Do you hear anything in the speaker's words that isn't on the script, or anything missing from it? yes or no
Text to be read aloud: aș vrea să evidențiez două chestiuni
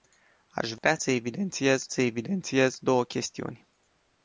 yes